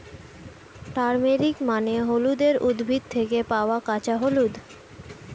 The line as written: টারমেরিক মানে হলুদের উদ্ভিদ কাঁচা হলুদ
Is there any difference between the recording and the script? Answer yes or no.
yes